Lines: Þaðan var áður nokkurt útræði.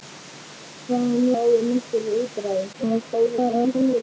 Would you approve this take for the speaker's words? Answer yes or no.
no